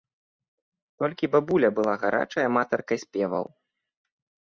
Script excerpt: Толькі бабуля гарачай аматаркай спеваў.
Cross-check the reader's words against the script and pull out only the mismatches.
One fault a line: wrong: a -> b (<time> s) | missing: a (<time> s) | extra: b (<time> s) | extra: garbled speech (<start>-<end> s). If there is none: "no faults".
extra: была (1.8 s)